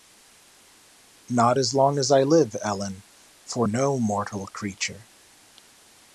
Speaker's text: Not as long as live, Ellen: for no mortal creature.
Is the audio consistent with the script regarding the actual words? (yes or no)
no